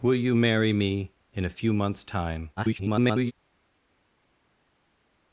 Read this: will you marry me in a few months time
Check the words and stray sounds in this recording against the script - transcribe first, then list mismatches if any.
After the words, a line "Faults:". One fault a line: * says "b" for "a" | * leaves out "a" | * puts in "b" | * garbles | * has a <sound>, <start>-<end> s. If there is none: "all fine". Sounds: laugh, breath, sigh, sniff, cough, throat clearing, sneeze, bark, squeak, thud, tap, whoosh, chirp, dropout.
will you marry me in a few months time [garbled]
Faults:
* garbles